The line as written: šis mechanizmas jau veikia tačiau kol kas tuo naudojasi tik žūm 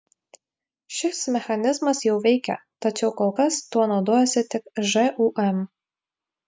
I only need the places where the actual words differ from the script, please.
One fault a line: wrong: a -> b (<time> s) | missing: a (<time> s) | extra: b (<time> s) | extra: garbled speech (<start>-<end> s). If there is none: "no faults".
no faults